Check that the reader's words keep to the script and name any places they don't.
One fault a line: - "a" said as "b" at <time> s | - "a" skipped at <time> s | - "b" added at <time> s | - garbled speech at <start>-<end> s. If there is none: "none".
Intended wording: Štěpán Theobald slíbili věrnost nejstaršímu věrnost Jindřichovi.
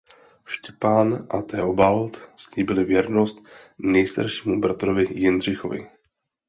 - "a" added at 1.3 s
- "věrnost" said as "bratrovi" at 4.6 s